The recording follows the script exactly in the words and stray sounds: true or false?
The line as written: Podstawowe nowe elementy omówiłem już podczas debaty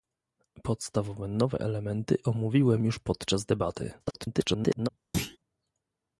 false